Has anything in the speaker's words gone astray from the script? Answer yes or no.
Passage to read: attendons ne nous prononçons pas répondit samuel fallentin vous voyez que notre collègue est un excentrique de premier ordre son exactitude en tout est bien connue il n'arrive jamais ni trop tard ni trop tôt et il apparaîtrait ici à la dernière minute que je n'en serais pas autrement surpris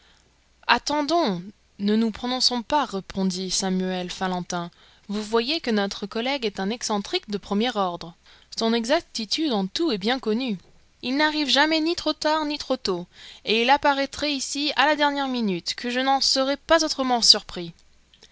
no